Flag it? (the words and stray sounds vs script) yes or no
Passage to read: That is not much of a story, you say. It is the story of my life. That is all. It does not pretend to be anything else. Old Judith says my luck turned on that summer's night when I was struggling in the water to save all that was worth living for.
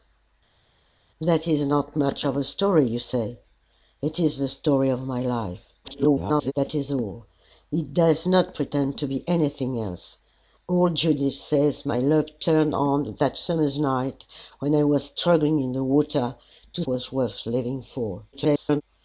yes